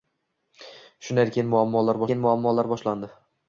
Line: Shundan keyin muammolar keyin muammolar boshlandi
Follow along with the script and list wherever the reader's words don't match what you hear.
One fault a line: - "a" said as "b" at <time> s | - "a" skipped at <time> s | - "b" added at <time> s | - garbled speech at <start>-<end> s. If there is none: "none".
none